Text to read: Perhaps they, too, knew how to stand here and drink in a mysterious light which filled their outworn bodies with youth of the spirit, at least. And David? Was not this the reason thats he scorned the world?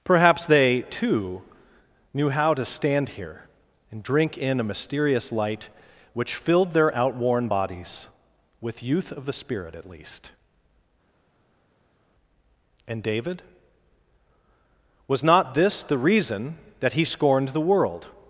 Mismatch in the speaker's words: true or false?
true